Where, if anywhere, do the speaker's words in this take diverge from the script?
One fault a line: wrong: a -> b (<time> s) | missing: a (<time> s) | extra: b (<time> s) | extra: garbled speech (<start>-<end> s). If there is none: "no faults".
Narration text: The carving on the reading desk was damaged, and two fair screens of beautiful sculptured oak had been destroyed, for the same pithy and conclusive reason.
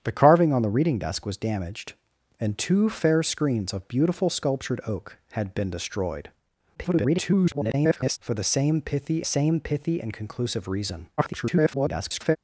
extra: garbled speech (6.7-8.2 s)
extra: same pithy (9.2 s)
extra: garbled speech (11.2-12.4 s)